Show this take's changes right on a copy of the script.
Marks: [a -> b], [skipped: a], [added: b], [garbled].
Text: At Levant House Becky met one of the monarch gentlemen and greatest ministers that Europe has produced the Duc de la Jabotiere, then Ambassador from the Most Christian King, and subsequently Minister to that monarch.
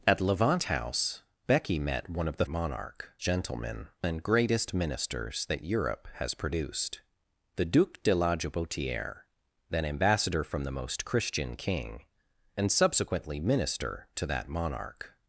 At Levant House Becky met one of the monarch gentlemen and greatest ministers that Europe has produced the Duc de la Jabotiere, then Ambassador from the Most Christian King, and subsequently Minister to that monarch.